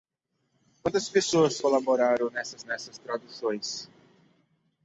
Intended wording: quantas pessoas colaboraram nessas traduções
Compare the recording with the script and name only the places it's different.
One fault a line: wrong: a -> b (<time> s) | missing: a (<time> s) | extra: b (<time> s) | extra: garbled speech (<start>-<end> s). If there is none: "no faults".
extra: nessas (2.6 s)